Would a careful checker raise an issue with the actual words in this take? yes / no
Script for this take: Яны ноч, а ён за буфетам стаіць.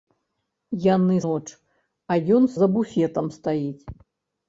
no